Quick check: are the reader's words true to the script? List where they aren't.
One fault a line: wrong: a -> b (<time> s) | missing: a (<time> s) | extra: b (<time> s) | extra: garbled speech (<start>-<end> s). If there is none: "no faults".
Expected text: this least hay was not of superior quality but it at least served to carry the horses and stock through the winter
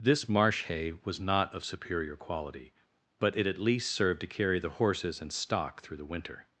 wrong: least -> marsh (0.3 s)